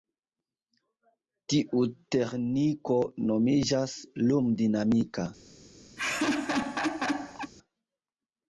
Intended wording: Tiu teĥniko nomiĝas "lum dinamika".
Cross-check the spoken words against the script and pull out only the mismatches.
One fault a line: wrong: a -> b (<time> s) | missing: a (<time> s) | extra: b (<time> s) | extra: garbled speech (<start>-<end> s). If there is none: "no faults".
no faults